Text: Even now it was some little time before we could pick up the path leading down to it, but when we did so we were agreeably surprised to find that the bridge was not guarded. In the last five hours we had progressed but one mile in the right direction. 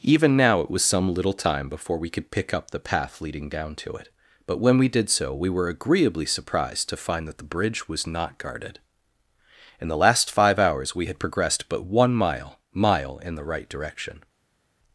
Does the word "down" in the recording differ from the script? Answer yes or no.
no